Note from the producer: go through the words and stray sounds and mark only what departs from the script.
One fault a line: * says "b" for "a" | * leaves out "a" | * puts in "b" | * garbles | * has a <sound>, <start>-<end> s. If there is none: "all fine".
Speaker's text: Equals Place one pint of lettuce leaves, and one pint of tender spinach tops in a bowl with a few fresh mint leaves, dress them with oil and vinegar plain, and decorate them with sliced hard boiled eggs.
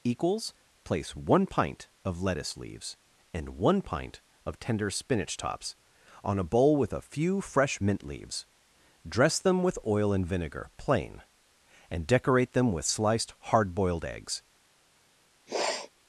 * says "on" for "in"
* has a sniff, 15.5-15.9 s